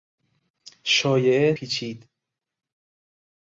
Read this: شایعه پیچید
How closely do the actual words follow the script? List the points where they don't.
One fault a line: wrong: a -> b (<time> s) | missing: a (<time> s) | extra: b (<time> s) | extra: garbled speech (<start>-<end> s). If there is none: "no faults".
no faults